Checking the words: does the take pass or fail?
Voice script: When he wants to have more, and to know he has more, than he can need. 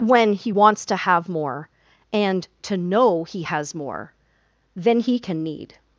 pass